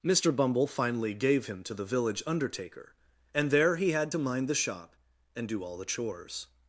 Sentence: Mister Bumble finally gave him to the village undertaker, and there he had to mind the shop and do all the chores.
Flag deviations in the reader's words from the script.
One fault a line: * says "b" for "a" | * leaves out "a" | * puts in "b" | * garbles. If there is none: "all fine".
all fine